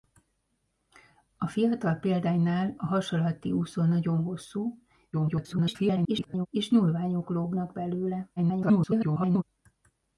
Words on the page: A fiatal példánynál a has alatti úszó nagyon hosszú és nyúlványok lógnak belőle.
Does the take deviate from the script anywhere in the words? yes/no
yes